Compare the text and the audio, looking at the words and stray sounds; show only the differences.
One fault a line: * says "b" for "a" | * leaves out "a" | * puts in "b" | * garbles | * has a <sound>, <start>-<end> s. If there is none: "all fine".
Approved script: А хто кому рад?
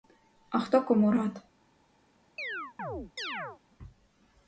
* has a chirp, 2.4-3.6 s